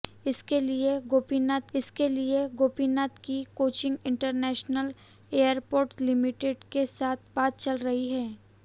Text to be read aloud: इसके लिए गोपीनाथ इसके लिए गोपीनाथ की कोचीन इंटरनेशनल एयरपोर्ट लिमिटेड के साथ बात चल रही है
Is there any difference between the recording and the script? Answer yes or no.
no